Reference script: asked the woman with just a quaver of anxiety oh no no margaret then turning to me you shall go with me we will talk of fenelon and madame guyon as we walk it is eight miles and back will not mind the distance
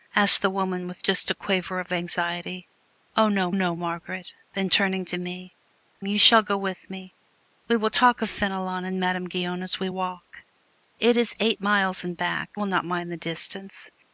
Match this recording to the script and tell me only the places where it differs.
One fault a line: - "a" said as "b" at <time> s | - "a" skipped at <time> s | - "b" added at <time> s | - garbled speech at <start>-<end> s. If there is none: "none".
none